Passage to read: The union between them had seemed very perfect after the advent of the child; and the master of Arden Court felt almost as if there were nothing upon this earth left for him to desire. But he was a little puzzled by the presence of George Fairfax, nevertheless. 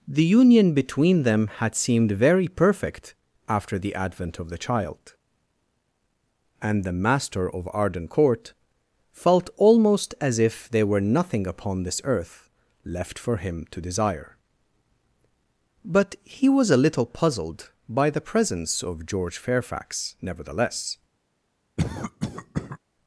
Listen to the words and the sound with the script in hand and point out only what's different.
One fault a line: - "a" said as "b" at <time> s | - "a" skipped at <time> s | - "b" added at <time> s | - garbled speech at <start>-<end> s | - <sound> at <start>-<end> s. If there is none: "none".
- cough at 21.8-22.8 s